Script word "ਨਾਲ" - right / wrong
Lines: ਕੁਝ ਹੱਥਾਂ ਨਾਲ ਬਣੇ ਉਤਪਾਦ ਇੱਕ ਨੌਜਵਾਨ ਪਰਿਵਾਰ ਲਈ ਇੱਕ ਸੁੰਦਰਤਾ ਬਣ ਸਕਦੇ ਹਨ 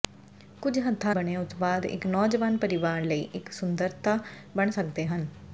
wrong